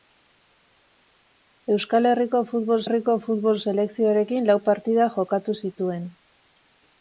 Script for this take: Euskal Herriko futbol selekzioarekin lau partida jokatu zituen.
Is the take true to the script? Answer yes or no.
no